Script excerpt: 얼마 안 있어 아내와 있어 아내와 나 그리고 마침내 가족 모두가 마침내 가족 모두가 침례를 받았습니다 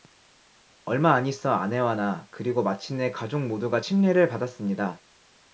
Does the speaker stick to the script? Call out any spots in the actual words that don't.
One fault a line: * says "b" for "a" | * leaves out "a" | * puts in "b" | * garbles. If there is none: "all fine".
* leaves out "있어 아내와"
* leaves out "마침내 가족 모두가"